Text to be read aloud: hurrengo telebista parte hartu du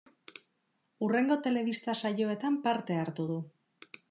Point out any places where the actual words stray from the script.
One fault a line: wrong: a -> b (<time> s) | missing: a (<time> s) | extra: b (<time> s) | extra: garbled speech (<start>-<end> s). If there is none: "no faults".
extra: saioetan (2.0 s)